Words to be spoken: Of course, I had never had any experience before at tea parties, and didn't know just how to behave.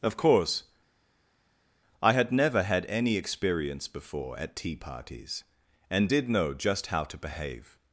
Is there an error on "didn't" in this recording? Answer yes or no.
yes